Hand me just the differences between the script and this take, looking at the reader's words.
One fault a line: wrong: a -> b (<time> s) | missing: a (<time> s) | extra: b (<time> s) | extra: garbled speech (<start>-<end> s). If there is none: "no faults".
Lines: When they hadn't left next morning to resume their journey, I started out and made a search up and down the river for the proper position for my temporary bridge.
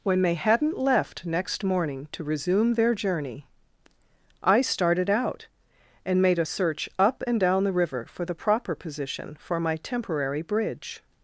no faults